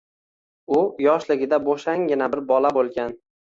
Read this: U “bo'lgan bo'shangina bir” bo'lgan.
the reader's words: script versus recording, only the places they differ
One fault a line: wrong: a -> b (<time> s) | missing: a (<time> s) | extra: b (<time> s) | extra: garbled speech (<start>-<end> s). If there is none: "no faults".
wrong: bo'lgan -> yoshligida (1.1 s)
extra: bola (2.6 s)